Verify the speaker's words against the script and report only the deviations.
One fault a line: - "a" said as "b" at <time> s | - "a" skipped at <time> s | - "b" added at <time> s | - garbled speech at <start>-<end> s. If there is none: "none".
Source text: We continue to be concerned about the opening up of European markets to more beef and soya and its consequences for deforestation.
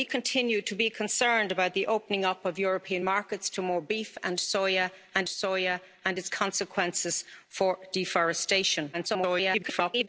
- "soya and" added at 5.3 s
- garbled speech at 8.9-10.1 s